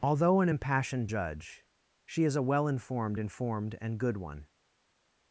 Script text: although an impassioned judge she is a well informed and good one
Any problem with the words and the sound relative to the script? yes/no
yes